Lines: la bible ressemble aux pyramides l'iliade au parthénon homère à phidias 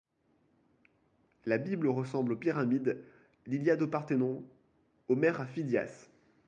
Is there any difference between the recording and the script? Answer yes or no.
no